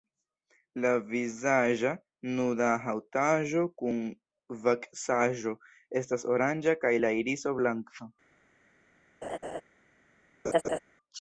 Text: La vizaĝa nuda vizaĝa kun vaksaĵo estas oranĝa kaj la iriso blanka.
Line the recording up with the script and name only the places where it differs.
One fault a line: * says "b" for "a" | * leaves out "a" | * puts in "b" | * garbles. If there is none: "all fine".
* says "haŭtaĵo" for "vizaĝa"